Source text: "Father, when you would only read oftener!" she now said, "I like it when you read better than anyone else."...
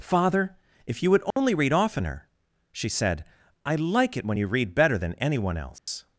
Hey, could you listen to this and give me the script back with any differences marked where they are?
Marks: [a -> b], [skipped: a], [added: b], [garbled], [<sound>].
"Father, [when -> if] you would only [dropout] read oftener!" she [skipped: now] said, "I like it when you read better than anyone else."... [dropout]